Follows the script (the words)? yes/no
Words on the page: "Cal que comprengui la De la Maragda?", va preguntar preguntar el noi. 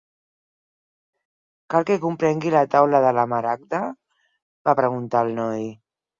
no